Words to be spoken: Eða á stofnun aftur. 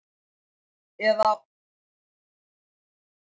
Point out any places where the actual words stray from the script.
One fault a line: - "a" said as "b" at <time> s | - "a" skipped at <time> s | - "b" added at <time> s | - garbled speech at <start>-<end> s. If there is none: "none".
none